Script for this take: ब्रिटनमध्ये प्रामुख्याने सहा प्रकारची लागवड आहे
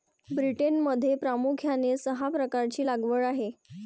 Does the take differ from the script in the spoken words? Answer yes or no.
no